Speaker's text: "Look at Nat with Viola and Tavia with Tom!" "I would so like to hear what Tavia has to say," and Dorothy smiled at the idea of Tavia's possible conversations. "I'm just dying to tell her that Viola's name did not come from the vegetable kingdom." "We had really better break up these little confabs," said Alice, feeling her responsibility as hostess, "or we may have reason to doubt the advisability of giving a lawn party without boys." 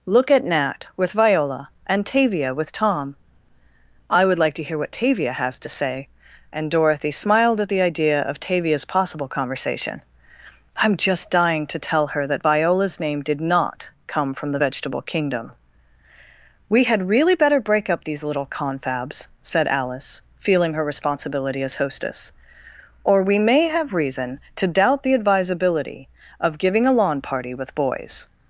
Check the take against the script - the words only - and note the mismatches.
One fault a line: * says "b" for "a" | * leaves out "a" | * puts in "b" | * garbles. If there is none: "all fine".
* leaves out "so"
* says "conversation" for "conversations"
* says "with" for "without"